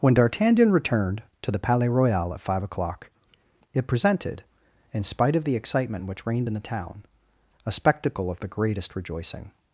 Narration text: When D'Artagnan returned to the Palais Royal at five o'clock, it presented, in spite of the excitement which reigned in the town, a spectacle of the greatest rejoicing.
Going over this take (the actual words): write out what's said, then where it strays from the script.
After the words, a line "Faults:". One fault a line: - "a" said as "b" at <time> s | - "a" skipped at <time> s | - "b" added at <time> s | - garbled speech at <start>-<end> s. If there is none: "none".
When D'Artagnan returned to the Palais Royal at five o'clock, it presented, in spite of the excitement which reigned in the town, a spectacle of the greatest rejoicing.
Faults:
none